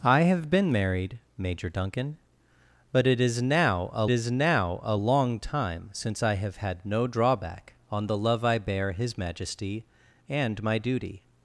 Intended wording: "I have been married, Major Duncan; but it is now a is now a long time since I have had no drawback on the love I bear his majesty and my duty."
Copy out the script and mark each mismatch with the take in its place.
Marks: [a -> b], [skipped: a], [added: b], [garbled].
"I have been married, Major Duncan; but it is now a is now a long time since I have had no drawback on the love I bear his majesty and my duty."